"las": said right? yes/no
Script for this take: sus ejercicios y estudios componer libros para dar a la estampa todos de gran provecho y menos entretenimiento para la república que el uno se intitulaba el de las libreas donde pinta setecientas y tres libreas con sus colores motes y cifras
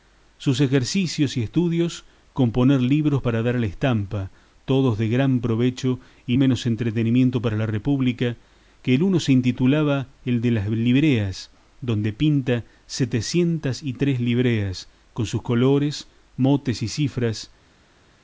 yes